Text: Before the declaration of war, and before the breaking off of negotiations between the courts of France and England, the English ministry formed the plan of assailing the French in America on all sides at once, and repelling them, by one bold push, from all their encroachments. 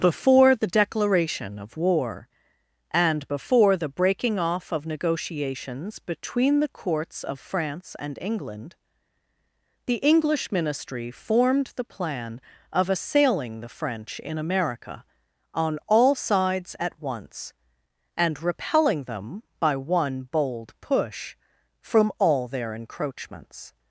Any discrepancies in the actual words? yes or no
no